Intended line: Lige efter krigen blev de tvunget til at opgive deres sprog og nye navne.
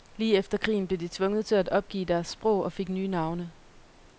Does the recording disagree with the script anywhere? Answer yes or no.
yes